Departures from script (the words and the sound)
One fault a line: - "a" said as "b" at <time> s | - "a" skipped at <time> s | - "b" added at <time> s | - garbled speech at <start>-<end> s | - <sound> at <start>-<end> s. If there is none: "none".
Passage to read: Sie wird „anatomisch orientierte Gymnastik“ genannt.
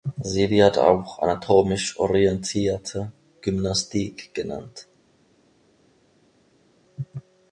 - "auch" added at 0.8 s